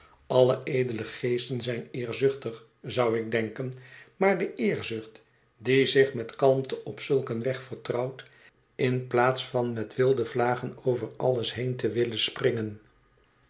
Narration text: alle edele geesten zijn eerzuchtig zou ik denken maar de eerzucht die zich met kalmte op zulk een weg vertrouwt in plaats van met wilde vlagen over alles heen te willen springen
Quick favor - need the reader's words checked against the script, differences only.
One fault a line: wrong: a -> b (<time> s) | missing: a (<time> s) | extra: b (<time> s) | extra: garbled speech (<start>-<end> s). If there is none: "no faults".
no faults